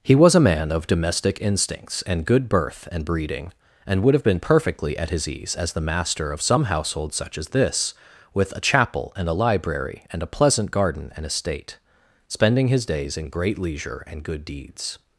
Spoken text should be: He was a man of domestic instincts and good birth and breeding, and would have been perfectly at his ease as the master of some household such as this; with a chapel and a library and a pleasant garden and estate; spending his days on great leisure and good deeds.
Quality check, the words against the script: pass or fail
fail